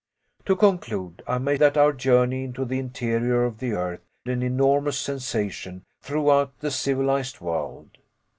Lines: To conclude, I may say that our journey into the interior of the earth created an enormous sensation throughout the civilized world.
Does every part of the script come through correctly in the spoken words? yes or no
no